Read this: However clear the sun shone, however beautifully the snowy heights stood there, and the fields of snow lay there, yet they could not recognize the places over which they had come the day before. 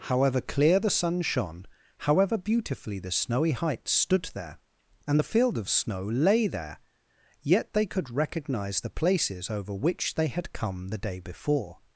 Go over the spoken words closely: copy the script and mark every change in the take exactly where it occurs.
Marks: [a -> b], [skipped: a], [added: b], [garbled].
However clear the sun shone, however beautifully the snowy heights stood there, and the [fields -> field] of snow lay there, yet they could [skipped: not] recognize the places over which they had come the day before.